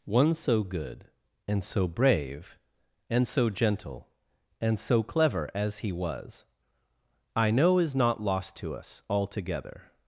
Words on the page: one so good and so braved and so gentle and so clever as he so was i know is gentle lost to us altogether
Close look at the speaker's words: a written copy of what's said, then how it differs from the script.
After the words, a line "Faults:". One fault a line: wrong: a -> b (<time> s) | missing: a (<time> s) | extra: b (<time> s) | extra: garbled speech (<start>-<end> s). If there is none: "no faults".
one so good and so brave and so gentle and so clever as he was i know is not lost to us altogether
Faults:
wrong: braved -> brave (1.9 s)
missing: so (5.9 s)
wrong: gentle -> not (7.9 s)